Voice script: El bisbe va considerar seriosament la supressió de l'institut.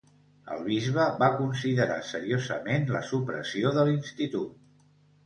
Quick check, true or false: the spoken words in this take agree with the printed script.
true